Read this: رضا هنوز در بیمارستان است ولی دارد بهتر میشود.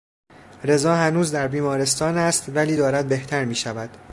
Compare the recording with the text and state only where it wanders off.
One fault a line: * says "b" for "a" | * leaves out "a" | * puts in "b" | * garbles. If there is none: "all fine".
all fine